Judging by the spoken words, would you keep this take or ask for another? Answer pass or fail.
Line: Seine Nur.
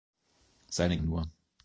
pass